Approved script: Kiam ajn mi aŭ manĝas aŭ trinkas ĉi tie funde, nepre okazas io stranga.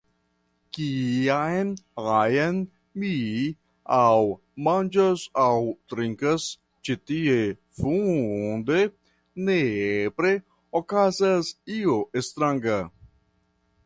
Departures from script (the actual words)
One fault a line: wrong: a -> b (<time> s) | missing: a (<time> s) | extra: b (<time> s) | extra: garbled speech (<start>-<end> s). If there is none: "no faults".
no faults